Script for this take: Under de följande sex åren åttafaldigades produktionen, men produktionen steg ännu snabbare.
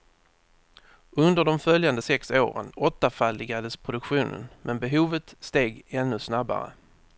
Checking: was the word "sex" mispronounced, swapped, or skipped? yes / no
no